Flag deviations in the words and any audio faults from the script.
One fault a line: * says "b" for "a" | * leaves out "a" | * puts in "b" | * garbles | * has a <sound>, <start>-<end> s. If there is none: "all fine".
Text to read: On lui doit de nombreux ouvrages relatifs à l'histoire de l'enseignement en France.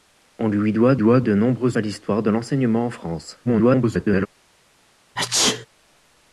* puts in "doit"
* leaves out "ouvrages relatifs"
* garbles
* has a sneeze, 5.2-5.7 s